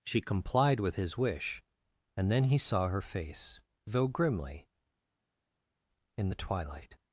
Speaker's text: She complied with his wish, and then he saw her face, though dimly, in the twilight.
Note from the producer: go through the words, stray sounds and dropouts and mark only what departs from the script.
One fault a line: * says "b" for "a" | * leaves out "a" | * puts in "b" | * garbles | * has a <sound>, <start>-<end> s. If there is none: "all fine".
* says "grimly" for "dimly"